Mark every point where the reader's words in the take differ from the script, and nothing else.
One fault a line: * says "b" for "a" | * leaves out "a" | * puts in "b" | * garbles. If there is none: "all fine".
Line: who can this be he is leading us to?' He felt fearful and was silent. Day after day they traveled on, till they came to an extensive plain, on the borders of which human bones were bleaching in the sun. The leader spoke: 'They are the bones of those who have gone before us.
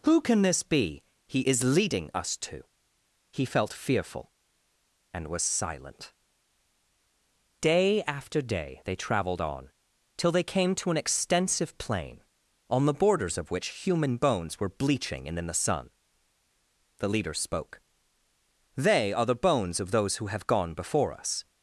* puts in "and"